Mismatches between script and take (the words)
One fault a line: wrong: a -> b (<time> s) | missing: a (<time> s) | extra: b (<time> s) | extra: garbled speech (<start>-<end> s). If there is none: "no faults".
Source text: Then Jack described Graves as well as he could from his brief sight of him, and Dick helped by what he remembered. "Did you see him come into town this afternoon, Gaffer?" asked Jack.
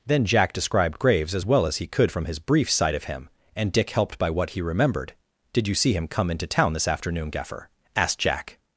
no faults